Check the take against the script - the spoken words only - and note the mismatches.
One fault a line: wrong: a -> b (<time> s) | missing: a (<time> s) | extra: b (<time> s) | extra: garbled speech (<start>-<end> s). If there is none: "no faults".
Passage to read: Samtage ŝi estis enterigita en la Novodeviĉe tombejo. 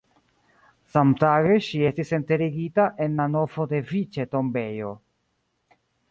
no faults